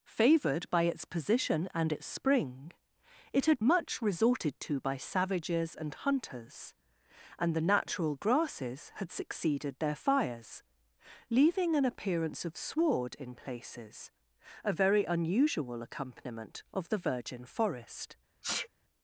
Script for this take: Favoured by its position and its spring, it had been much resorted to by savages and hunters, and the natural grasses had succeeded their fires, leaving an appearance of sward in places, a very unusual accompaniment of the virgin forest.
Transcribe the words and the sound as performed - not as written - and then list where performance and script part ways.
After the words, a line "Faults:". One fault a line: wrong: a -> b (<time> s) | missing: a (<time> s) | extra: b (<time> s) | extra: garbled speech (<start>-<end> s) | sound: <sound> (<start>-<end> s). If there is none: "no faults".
Favoured by its position and its spring, it had much resorted to by savages and hunters, and the natural grasses had succeeded their fires, leaving an appearance of sward in places, a very unusual accompaniment of the virgin forest.
Faults:
missing: been (3.6 s)
sound: sneeze (18.4-18.7 s)